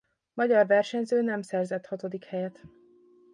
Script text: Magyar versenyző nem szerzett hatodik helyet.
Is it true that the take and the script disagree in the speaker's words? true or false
false